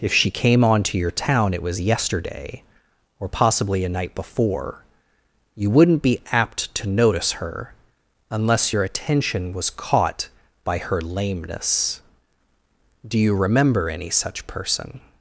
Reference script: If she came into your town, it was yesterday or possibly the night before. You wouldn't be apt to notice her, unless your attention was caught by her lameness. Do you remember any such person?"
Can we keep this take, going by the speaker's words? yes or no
no